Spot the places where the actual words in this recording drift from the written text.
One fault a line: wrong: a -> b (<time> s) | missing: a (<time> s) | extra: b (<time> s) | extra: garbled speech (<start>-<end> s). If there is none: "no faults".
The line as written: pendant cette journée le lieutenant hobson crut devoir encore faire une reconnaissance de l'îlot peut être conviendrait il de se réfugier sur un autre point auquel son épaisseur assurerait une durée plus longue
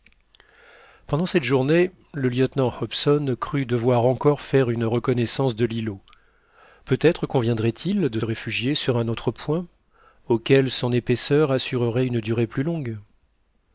missing: se (8.2 s)